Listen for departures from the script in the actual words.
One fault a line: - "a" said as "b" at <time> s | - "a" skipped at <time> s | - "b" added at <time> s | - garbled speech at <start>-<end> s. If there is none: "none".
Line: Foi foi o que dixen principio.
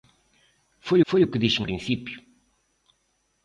none